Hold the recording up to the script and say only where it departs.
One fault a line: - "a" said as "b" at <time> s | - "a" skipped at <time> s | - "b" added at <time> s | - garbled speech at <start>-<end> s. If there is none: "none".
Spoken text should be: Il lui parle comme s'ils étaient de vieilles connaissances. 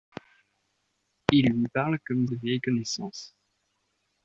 - "s'ils étaient" skipped at 2.3 s